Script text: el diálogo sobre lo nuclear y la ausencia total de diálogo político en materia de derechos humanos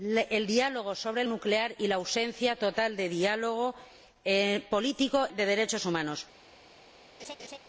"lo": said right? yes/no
no